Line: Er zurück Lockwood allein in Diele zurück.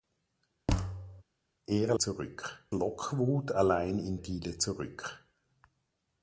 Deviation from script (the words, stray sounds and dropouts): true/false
true